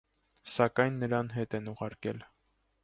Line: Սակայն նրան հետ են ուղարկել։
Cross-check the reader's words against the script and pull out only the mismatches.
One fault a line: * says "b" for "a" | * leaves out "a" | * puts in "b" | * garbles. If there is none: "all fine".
all fine